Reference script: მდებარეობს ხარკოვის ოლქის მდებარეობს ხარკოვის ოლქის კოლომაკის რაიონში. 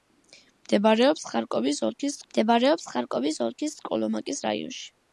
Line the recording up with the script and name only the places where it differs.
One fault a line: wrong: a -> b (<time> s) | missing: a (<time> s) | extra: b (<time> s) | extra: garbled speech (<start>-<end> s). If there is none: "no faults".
no faults